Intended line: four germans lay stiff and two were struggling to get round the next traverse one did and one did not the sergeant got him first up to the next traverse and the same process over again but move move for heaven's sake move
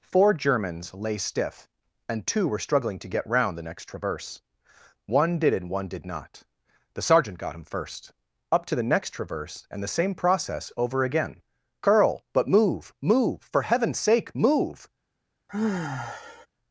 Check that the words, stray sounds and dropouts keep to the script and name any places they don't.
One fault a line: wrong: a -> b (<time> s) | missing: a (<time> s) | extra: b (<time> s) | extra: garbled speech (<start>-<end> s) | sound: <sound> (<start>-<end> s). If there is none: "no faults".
extra: curl (11.8 s)
sound: sigh (15.5-16.5 s)